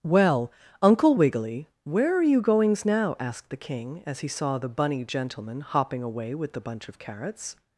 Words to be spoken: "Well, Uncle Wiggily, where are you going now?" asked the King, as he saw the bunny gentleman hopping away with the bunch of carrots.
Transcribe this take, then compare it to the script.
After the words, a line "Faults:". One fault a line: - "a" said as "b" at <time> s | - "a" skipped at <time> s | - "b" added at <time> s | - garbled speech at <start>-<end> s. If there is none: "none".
"Well, Uncle Wiggily, where are you goings now?" asked the King, as he saw the bunny gentleman hopping away with the bunch of carrots.
Faults:
- "going" said as "goings" at 2.4 s